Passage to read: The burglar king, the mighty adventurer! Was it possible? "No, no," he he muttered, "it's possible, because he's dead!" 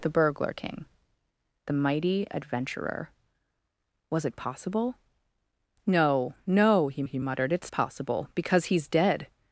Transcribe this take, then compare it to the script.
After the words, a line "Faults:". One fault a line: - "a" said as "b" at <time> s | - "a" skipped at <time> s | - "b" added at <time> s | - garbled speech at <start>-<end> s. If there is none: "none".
The burglar king, the mighty adventurer! Was it possible? "No, no," he he muttered, "it's possible, because he's dead!"
Faults:
none